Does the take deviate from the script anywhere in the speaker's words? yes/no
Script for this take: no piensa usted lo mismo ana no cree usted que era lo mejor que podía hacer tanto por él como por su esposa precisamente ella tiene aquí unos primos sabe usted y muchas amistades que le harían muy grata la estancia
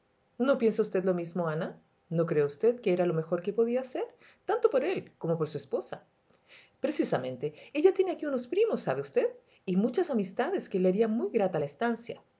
no